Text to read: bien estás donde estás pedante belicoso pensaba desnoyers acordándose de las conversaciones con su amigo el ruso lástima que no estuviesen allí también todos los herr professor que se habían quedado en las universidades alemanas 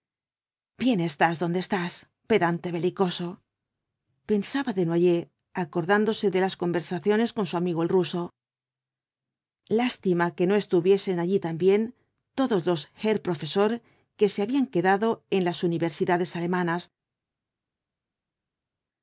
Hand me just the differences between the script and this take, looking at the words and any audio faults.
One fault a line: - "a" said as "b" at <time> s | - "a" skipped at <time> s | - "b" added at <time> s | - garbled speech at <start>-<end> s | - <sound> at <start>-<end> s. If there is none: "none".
none